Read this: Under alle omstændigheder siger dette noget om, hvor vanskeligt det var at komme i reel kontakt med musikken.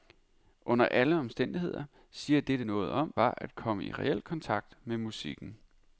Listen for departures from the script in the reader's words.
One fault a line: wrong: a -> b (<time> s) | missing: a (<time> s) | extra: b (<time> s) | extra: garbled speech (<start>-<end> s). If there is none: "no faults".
missing: hvor vanskeligt det (3.1 s)